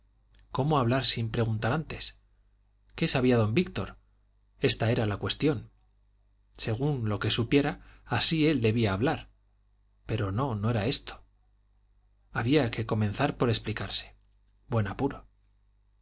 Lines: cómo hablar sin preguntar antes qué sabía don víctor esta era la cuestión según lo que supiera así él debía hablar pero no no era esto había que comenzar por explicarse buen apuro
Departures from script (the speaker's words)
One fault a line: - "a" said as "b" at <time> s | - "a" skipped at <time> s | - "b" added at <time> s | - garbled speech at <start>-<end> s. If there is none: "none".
none